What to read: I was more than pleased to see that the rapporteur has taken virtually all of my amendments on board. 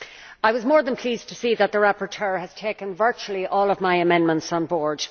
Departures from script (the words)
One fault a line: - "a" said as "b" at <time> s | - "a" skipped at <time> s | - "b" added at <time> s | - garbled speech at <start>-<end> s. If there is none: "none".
none